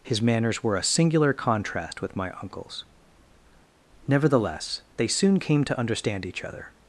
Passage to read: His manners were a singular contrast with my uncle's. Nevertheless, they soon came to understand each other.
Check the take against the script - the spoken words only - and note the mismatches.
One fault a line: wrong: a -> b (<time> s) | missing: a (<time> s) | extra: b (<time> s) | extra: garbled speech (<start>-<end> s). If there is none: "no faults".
no faults